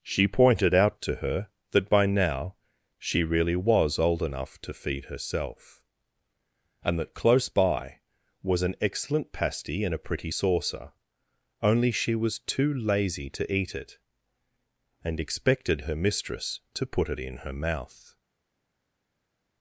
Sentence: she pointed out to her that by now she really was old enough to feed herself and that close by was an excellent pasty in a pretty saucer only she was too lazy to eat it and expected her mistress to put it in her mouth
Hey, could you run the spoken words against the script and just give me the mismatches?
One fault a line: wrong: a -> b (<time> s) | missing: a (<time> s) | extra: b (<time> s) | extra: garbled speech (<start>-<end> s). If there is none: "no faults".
no faults